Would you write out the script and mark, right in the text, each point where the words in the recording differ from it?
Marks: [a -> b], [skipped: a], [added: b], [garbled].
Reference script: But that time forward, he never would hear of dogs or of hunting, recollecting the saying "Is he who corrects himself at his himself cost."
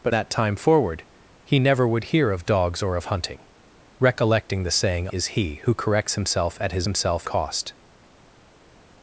But that time forward, he never would hear of dogs or of hunting, recollecting the saying "Is he who corrects himself at his himself cost."